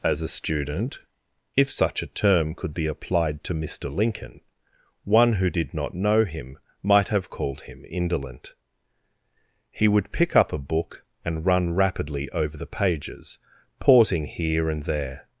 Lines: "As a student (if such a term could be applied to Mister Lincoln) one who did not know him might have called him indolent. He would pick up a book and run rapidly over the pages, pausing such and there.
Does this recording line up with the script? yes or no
no